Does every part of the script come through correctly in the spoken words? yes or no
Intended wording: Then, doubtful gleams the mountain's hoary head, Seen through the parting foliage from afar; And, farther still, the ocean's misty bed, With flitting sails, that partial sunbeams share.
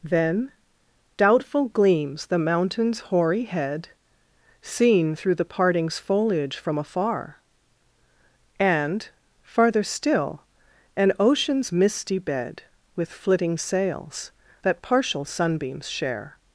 no